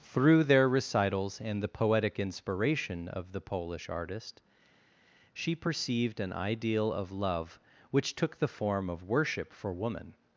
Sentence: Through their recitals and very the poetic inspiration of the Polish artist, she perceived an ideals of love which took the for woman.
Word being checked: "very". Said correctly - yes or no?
no